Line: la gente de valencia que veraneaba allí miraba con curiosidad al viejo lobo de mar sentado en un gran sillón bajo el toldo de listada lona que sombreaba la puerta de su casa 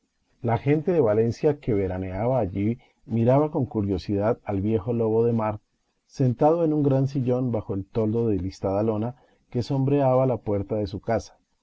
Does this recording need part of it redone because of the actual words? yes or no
no